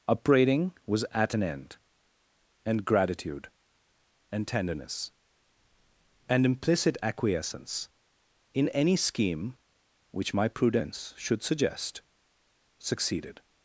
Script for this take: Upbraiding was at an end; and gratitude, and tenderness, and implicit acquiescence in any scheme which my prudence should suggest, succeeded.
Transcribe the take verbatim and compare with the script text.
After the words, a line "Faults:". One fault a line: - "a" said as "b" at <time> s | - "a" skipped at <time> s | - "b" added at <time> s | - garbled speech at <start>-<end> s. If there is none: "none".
Upbraiding was at an end; and gratitude, and tenderness, and implicit acquiescence in any scheme which my prudence should suggest, succeeded.
Faults:
none